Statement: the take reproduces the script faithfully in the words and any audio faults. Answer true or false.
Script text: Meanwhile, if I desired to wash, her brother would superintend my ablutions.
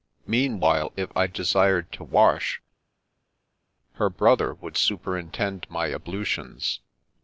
true